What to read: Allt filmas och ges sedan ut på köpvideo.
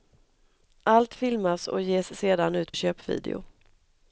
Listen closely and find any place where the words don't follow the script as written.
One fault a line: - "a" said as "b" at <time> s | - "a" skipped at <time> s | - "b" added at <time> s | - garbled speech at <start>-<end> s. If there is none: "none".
- "på" skipped at 2.7 s